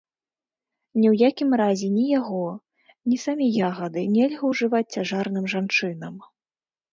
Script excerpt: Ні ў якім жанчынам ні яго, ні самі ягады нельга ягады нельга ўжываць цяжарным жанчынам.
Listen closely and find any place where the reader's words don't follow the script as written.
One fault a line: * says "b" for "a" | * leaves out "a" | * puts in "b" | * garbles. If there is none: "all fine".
* says "разе" for "жанчынам"
* leaves out "ягады нельга"